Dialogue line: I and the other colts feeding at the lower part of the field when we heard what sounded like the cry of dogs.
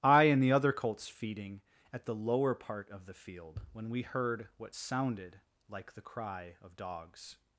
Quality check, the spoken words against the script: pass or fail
pass